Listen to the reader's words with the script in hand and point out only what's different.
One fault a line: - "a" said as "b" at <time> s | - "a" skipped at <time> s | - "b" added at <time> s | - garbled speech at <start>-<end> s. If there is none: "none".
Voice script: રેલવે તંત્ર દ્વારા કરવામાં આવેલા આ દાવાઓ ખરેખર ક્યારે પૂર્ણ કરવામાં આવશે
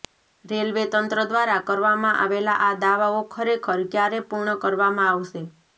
none